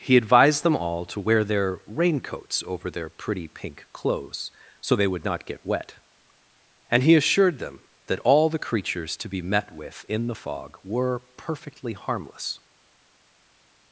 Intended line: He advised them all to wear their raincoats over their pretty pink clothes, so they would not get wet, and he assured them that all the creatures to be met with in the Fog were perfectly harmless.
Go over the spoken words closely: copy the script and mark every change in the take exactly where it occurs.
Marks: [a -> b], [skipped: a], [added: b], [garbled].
He advised them all to wear their raincoats over their pretty pink clothes, so they would not get wet, and he assured them that all the creatures to be met with in the Fog were perfectly harmless.